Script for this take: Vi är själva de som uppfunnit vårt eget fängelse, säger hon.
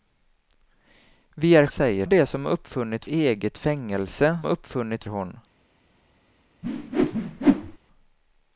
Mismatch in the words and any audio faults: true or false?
true